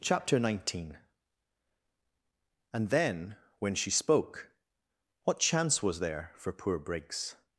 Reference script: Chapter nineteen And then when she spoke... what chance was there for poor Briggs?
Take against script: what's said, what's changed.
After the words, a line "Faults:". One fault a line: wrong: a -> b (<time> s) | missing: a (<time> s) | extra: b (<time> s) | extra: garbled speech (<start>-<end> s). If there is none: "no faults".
Chapter nineteen And then when she spoke... what chance was there for poor Briggs?
Faults:
no faults